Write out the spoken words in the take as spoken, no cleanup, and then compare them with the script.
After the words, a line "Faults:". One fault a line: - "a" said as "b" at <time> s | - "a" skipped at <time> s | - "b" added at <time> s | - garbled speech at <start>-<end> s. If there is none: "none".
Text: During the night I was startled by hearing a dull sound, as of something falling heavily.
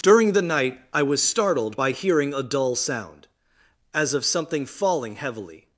During the night I was startled by hearing a dull sound, as of something falling heavily.
Faults:
none